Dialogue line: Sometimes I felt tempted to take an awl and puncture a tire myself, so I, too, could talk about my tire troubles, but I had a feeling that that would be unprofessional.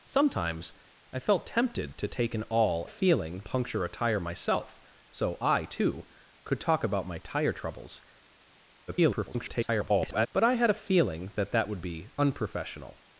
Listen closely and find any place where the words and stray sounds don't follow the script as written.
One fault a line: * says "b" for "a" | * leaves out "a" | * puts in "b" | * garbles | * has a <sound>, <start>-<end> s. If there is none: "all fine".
* says "feeling" for "and"
* garbles